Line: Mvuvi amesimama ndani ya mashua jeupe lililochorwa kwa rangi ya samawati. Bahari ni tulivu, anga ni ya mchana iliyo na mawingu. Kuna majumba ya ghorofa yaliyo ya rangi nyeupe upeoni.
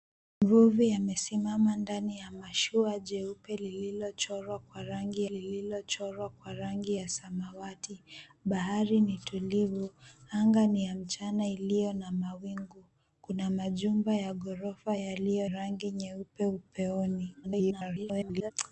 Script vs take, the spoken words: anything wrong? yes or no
yes